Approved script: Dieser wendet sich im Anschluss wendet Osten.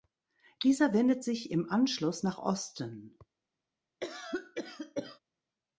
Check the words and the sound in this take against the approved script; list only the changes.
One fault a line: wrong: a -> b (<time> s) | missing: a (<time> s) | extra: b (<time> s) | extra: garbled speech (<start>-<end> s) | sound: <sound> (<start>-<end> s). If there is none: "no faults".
wrong: wendet -> nach (2.2 s)
sound: cough (4.0-5.2 s)